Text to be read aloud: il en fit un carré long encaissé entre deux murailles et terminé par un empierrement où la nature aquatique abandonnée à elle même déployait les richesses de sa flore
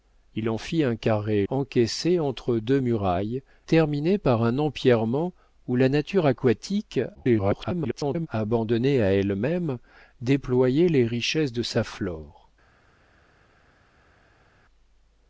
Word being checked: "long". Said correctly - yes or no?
no